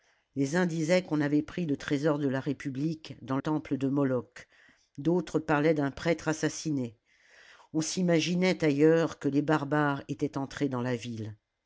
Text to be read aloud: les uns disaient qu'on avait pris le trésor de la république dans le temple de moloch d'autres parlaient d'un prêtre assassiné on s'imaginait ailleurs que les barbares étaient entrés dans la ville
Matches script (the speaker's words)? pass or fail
fail